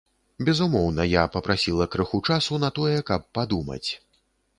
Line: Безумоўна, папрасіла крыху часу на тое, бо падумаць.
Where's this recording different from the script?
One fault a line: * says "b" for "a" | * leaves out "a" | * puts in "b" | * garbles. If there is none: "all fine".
* puts in "я"
* says "каб" for "бо"